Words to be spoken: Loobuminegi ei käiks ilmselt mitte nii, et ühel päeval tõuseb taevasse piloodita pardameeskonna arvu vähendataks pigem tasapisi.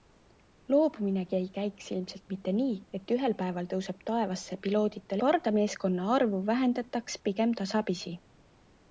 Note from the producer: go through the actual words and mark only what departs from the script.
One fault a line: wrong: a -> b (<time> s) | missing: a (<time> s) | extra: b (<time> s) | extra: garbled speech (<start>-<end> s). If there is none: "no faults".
no faults